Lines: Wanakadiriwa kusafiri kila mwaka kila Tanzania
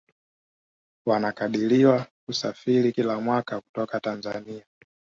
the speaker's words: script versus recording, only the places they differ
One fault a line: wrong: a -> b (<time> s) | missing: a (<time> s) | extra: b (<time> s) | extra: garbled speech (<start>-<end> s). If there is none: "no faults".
wrong: kila -> kutoka (3.6 s)